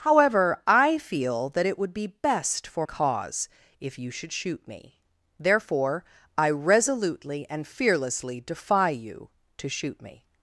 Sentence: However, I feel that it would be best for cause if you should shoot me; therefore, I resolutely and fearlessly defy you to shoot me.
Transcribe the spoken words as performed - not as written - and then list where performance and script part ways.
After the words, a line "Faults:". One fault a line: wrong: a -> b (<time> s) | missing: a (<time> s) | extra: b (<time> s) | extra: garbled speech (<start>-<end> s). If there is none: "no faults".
However, I feel that it would be best for cause if you should shoot me; therefore, I resolutely and fearlessly defy you to shoot me.
Faults:
no faults